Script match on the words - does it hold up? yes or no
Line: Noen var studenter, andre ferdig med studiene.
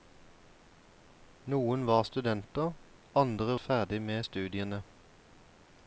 yes